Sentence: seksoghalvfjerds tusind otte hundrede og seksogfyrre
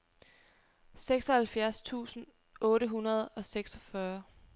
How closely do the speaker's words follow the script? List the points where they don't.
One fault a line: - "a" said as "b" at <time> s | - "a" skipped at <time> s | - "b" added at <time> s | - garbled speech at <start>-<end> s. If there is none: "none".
none